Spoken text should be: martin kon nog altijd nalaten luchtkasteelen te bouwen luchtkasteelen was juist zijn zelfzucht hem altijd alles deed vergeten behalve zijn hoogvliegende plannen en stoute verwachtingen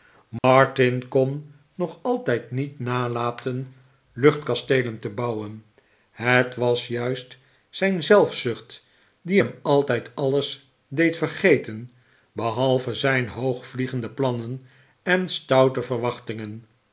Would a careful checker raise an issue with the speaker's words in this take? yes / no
yes